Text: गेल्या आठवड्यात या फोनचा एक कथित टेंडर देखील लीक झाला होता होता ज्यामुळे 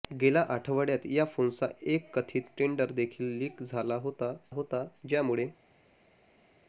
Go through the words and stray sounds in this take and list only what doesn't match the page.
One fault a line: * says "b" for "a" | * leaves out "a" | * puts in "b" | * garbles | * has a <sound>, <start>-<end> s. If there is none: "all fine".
all fine